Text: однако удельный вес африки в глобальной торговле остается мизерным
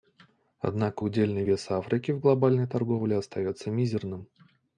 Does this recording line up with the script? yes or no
yes